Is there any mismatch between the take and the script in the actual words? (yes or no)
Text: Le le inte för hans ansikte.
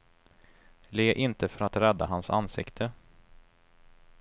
yes